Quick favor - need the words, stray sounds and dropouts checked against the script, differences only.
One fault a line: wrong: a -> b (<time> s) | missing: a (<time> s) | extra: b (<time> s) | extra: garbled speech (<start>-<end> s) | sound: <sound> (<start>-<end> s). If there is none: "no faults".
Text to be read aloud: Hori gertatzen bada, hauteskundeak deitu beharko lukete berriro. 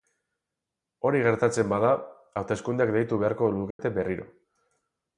sound: dropout (3.7-3.8 s)